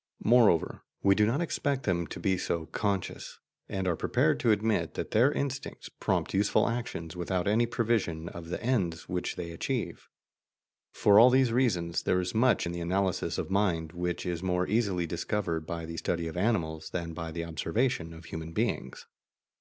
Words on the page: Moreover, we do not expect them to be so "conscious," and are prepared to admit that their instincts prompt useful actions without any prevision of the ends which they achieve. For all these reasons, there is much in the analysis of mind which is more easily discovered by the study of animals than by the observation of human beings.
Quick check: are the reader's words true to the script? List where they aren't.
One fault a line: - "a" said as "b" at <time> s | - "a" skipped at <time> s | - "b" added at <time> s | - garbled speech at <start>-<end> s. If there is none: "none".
none